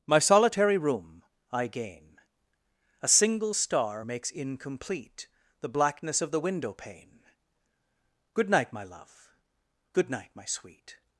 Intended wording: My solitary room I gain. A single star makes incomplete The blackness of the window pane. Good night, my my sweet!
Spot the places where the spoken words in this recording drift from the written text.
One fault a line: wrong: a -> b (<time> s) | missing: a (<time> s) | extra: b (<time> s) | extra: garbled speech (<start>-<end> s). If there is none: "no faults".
extra: love good night (8.8 s)